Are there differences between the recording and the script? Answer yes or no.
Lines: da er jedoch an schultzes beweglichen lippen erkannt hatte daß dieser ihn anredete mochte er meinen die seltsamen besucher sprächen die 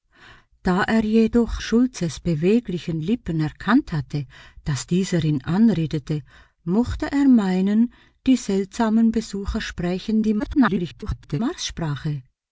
yes